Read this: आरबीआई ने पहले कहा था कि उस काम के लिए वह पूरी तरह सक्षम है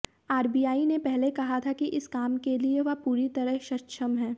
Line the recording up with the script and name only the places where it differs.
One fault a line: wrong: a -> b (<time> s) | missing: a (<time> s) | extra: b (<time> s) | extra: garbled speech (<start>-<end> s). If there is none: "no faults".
wrong: उस -> इस (1.9 s)